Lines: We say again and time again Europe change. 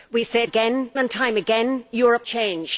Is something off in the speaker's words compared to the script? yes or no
no